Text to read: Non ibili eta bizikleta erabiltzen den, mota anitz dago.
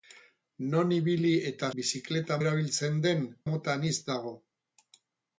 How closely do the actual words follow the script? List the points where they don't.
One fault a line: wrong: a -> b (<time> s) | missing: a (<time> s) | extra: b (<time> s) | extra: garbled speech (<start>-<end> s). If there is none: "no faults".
no faults